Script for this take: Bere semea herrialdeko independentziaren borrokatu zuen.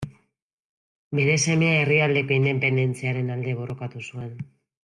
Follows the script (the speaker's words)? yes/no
no